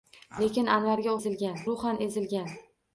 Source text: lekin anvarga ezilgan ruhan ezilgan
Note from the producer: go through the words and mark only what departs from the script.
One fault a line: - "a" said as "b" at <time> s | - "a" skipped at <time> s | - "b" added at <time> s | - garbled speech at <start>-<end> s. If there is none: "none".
none